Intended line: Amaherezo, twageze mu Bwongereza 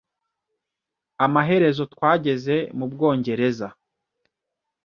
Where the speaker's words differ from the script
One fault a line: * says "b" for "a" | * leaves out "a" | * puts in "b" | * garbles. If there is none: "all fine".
all fine